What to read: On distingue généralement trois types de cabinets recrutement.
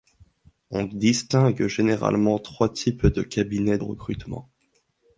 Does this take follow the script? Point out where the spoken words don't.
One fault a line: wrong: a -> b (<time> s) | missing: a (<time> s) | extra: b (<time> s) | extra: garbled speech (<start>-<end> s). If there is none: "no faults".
no faults